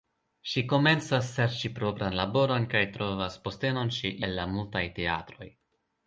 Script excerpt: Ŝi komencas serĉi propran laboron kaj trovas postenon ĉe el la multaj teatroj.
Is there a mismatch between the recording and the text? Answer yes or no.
no